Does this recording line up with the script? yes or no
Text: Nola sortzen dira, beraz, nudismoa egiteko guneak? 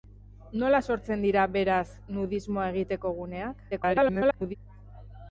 no